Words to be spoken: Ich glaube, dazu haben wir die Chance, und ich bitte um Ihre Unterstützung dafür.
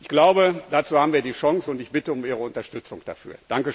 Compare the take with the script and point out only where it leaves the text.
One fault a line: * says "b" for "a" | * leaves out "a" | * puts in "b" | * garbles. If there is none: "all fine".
all fine